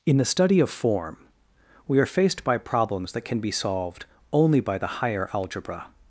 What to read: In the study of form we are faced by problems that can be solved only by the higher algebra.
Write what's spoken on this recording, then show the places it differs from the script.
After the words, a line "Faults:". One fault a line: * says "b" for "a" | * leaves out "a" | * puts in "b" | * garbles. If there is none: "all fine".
In the study of form we are faced by problems that can be solved only by the higher algebra.
Faults:
all fine